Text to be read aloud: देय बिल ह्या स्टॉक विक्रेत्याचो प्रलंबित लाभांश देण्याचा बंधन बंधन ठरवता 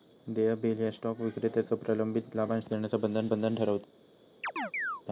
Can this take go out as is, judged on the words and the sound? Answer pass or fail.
fail